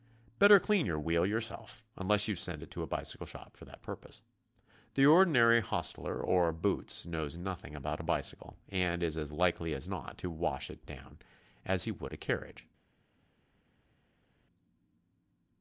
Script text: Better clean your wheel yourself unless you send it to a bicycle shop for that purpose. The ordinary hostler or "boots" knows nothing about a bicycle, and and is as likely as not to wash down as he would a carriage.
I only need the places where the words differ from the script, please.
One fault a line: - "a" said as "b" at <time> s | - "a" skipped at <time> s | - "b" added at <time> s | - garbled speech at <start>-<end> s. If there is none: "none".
- "and" skipped at 9.0 s
- "it" added at 10.7 s